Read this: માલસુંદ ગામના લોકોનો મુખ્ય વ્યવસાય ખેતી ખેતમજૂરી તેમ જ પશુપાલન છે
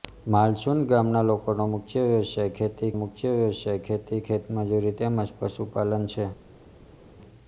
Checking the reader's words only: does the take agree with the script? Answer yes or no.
no